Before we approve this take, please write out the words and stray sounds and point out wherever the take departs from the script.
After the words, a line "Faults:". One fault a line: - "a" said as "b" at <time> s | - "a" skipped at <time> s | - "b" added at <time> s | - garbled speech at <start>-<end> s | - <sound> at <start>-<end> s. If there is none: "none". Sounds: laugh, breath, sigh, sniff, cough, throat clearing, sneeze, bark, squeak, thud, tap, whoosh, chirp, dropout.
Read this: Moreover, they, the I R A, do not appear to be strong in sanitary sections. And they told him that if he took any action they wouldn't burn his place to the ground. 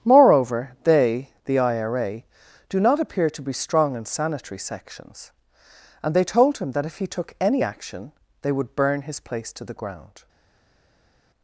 Moreover, they, the I R A, do not appear to be strong in sanitary sections. And they told him that if he took any action they would burn his place to the ground.
Faults:
- "wouldn't" said as "would" at 8.5 s